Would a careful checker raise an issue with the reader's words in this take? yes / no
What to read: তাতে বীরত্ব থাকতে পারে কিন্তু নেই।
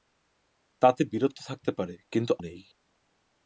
no